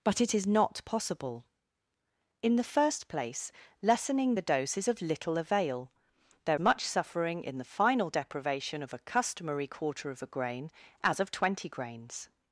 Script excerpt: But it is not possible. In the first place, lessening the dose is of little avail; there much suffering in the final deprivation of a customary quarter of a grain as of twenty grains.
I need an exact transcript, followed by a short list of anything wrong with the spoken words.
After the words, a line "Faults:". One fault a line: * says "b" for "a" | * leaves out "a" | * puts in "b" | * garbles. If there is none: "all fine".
But it is not possible. In the first place, lessening the dose is of little avail; there much suffering in the final deprivation of a customary quarter of a grain as of twenty grains.
Faults:
all fine